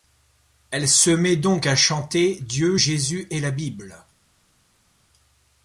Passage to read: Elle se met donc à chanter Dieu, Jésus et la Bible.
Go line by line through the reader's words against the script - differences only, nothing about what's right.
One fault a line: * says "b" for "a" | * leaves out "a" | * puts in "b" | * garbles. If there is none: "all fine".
all fine